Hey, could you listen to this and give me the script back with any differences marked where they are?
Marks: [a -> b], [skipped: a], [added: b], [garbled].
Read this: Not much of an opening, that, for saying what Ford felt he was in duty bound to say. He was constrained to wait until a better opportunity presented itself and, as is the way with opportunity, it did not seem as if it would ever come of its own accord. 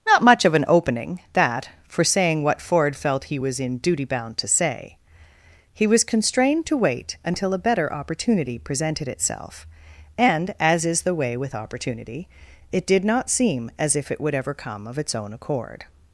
Not much of an opening, that, for saying what Ford felt he was in duty bound to say. He was constrained to wait until a better opportunity presented itself and, as is the way with opportunity, it did not seem as if it would ever come of its own accord.